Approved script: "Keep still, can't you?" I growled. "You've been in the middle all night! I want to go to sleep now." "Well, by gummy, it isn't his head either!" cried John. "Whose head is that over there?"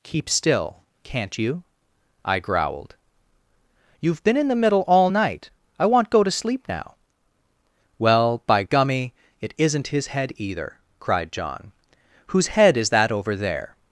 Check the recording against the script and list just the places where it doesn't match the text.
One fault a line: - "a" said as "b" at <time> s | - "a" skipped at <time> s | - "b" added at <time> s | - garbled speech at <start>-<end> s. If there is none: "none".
- "to" skipped at 6.1 s